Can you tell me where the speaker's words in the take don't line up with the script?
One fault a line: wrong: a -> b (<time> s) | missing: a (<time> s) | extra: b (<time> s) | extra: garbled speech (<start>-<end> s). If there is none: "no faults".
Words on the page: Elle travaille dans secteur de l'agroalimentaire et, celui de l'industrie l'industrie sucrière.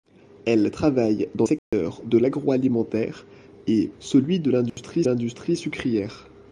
no faults